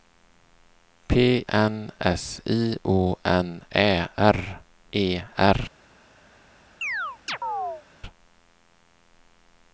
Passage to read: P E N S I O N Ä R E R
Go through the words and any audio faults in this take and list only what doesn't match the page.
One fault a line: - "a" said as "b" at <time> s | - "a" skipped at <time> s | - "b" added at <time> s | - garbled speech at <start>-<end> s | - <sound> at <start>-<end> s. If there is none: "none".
- "E" skipped at 1.4 s
- chirp at 6.8-7.8 s